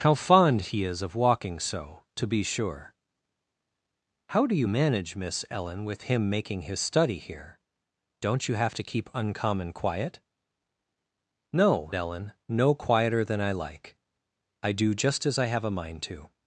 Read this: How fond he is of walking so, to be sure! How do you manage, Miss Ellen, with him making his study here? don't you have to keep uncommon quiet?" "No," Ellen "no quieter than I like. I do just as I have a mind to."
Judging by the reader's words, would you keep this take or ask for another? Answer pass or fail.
pass